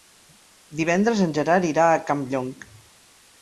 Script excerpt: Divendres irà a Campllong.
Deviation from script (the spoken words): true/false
true